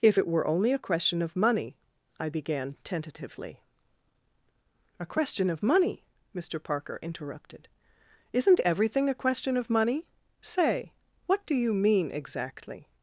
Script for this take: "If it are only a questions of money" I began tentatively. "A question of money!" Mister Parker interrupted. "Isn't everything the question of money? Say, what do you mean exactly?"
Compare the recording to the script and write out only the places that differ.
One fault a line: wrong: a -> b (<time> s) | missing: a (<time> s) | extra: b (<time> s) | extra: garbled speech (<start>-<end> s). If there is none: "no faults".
wrong: are -> were (0.3 s)
wrong: questions -> question (0.8 s)
wrong: the -> a (9.1 s)